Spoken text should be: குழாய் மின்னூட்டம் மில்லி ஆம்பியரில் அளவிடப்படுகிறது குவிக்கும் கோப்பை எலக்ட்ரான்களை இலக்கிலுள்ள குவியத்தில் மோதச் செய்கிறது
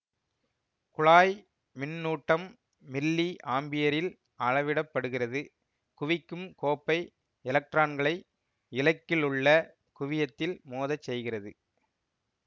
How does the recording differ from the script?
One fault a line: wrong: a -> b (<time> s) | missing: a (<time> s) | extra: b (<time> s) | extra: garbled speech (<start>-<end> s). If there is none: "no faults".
no faults